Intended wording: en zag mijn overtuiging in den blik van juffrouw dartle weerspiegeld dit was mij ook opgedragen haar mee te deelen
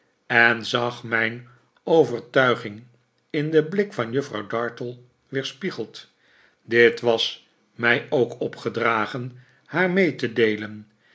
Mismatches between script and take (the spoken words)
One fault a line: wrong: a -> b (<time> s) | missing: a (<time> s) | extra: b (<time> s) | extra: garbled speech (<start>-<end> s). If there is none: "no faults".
no faults